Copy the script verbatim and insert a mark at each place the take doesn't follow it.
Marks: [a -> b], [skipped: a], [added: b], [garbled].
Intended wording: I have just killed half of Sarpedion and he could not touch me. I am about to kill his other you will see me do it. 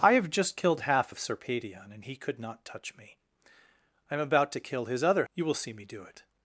I have just killed half of Sarpedion and he could not touch me. I am about to kill his other you will see me do it.